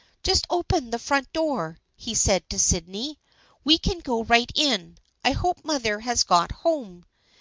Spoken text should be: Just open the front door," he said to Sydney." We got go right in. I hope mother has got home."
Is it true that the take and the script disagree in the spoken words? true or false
true